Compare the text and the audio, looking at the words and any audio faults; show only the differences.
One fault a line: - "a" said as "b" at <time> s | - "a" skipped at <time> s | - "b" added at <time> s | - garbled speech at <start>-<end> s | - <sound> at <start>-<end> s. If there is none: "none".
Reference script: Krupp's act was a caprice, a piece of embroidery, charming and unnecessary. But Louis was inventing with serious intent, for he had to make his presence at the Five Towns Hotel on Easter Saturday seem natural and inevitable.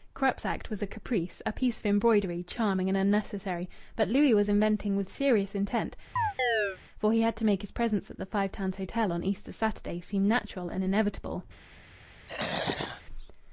- chirp at 6.2-6.8 s
- throat clearing at 12.3-13.0 s